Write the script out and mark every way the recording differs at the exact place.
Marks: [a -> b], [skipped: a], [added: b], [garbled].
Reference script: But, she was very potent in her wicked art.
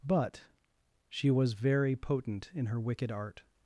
But, she was very potent in her wicked art.